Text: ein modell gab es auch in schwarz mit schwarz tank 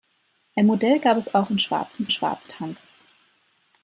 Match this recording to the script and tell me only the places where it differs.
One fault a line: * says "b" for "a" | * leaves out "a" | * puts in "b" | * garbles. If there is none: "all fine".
all fine